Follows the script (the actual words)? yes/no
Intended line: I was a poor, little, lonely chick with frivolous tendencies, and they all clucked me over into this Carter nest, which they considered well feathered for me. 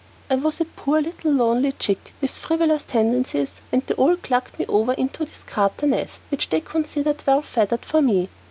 yes